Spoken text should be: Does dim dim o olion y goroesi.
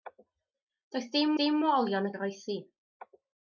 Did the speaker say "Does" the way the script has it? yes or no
yes